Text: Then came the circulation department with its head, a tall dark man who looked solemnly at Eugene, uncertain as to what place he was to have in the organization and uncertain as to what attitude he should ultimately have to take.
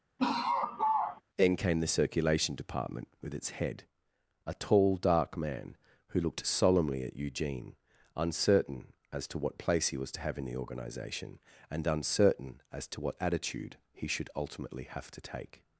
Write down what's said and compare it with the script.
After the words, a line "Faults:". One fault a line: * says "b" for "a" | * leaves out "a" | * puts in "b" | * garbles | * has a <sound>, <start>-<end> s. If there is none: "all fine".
Then came the circulation department with its head, a tall dark man who looked solemnly at Eugene, uncertain as to what place he was to have in the organization and uncertain as to what attitude he should ultimately have to take.
Faults:
* has a laugh, 0.2-1.2 s